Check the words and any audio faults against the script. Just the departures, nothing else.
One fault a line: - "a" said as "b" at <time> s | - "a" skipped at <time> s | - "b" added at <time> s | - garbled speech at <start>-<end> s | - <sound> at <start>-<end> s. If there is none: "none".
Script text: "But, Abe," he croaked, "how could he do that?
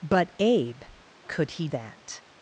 - "he croaked how" skipped at 0.8 s
- "do" skipped at 1.7 s